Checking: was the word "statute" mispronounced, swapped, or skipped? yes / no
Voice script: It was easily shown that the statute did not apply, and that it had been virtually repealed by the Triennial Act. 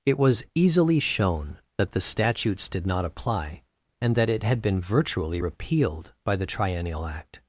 yes